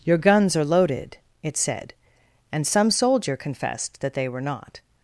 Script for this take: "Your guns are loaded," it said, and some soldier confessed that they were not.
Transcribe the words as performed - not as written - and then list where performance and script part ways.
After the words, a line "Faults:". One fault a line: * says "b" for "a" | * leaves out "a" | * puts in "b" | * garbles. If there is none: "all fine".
"Your guns are loaded," it said, and some soldier confessed that they were not.
Faults:
all fine